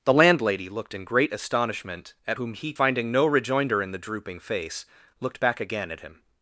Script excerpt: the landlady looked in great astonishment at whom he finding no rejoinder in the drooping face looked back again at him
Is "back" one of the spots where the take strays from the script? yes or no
no